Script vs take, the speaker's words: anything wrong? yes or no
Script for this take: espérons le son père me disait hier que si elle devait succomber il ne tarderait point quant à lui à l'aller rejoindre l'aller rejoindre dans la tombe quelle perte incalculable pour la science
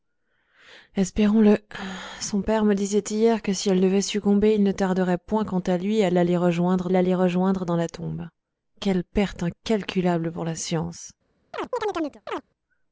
no